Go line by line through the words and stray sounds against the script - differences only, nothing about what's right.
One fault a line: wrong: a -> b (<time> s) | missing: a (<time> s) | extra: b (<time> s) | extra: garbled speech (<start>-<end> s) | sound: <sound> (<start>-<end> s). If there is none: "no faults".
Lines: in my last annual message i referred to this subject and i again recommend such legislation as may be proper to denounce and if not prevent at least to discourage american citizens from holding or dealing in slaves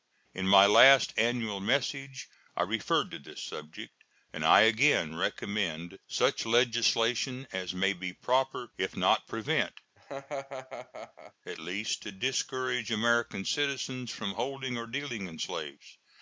missing: to denounce and (8.7 s)
sound: laugh (9.9-11.3 s)